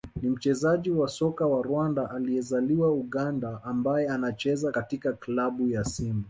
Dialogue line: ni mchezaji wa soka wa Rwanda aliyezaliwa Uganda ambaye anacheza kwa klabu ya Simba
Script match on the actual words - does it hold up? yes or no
no